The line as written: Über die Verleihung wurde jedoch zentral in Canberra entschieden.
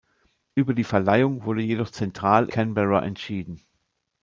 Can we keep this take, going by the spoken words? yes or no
no